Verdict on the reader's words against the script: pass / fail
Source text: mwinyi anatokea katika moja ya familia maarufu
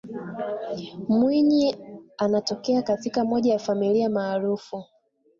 pass